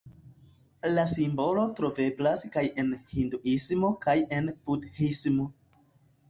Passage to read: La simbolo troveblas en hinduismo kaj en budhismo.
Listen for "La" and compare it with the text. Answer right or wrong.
right